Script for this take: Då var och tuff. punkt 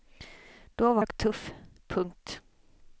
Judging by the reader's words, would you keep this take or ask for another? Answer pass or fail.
pass